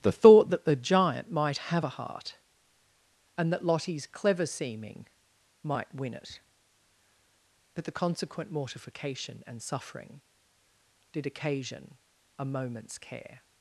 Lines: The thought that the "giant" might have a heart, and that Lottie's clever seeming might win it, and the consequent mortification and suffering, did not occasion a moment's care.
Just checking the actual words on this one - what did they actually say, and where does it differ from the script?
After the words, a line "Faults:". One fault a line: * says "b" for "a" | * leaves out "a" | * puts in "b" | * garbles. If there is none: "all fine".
The thought that the "giant" might have a heart, and that Lottie's clever seeming might win it, but the consequent mortification and suffering, did occasion a moment's care.
Faults:
* says "but" for "and"
* leaves out "not"